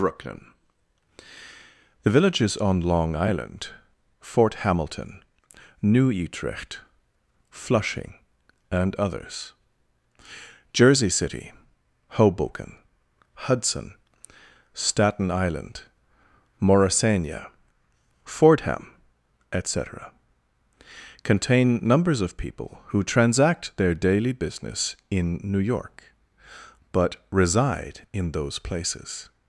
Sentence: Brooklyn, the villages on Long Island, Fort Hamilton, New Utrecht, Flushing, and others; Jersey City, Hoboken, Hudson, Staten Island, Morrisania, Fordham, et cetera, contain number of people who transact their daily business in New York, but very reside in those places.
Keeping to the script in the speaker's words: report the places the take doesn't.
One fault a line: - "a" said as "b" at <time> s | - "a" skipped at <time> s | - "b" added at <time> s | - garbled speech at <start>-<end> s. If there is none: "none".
- "number" said as "numbers" at 21.9 s
- "very" skipped at 27.2 s